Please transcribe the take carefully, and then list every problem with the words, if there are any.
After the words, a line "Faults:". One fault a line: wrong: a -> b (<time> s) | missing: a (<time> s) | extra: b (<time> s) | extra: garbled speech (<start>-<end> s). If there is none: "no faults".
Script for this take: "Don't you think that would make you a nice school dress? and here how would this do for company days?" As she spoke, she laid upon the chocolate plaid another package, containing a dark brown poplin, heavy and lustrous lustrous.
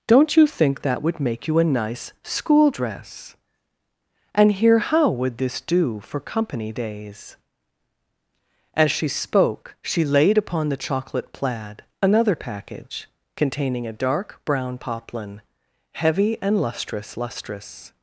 "Don't you think that would make you a nice school dress? and here how would this do for company days?" As she spoke, she laid upon the chocolate plaid another package, containing a dark brown poplin, heavy and lustrous lustrous.
Faults:
no faults